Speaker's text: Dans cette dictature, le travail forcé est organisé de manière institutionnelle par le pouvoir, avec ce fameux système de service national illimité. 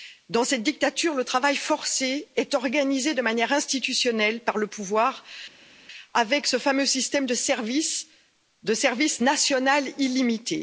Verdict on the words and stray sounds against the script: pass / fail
pass